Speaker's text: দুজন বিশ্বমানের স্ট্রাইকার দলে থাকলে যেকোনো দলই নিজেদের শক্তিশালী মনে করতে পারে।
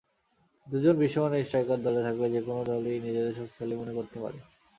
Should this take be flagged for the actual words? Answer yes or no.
no